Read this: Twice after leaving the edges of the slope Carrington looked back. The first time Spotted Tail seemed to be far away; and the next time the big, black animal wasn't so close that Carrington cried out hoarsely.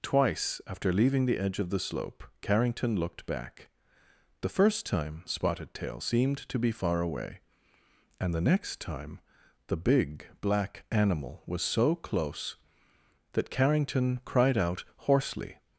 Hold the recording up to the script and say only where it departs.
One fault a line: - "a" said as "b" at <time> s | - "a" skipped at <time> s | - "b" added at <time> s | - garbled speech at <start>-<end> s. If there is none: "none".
- "edges" said as "edge" at 1.4 s
- "wasn't" said as "was" at 11.5 s